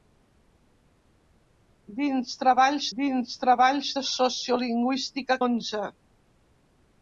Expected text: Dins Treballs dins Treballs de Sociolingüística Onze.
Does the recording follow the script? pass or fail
pass